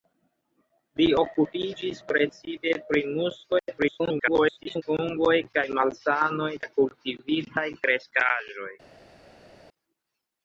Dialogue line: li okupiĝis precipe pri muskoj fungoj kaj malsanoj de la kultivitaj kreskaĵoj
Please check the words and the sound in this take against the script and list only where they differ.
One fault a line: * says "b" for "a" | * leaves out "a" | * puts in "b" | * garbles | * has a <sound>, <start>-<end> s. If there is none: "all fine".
* garbles
* leaves out "de"